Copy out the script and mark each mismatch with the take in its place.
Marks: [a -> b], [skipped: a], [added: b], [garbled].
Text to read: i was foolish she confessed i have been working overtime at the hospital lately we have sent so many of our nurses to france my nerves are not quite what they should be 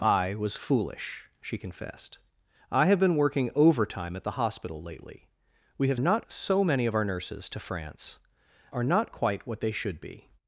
i was foolish she confessed i have been working overtime at the hospital lately we have [sent -> not] so many of our nurses to france [skipped: my nerves] are not quite what they should be